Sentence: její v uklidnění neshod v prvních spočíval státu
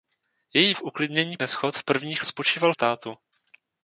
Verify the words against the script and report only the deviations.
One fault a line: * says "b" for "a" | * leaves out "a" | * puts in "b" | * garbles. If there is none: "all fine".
all fine